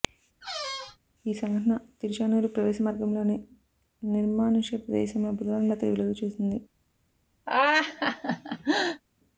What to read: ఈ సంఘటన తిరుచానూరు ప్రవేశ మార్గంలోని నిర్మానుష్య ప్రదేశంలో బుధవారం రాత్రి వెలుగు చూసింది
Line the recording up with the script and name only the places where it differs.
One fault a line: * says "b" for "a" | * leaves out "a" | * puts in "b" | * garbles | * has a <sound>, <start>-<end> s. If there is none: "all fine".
* has a squeak, 0.4-1.0 s
* has a laugh, 7.5-9.0 s